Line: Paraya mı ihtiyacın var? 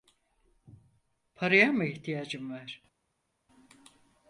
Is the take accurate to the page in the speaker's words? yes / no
yes